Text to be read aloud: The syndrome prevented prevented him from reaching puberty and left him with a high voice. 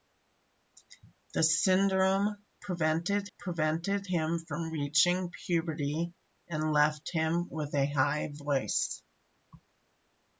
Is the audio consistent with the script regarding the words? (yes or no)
yes